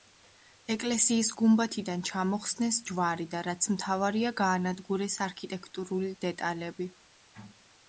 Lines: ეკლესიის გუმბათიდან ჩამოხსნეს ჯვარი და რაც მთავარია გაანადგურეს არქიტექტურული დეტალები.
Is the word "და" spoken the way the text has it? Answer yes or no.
yes